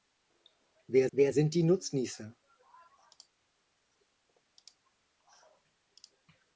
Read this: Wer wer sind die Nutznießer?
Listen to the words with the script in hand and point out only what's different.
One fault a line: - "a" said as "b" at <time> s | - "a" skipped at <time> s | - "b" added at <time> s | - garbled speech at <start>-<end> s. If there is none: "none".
none